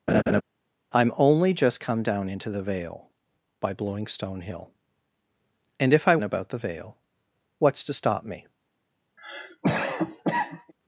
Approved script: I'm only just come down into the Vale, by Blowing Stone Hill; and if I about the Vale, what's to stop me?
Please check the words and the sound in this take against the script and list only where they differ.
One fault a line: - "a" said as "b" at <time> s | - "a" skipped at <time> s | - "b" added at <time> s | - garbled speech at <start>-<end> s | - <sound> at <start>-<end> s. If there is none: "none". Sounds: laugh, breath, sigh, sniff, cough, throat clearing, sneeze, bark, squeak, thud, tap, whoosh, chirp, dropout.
- laugh at 0.1-0.4 s
- cough at 9.2-10.7 s